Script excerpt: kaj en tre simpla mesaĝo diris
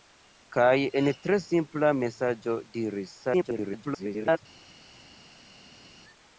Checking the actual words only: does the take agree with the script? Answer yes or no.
no